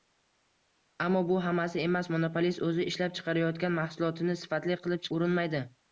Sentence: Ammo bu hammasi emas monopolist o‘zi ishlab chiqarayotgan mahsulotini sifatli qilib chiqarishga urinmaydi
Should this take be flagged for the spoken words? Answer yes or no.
yes